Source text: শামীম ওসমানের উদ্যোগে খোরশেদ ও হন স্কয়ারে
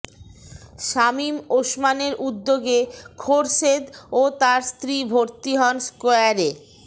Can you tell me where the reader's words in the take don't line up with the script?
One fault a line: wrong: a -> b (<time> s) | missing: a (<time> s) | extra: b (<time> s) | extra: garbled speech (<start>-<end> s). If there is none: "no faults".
extra: তার স্ত্রী ভর্তি (4.4 s)